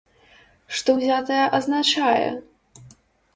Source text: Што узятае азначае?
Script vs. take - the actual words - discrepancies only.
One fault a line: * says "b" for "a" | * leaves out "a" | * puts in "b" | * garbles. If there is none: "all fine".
all fine